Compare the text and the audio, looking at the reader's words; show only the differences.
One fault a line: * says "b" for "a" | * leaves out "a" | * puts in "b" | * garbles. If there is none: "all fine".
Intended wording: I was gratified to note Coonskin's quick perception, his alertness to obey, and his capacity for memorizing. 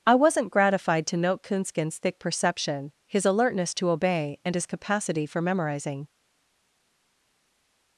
* says "wasn't" for "was"
* says "thick" for "quick"